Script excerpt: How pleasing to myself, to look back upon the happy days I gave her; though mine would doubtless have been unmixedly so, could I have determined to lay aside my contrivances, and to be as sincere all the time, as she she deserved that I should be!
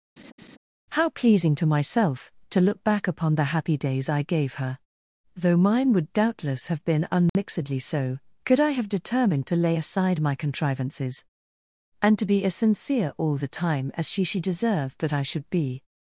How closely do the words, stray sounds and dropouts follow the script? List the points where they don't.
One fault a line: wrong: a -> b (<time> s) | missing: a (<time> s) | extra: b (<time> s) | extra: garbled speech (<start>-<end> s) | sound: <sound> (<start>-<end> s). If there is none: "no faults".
sound: laugh (0.2-0.6 s)
sound: dropout (7.3-7.4 s)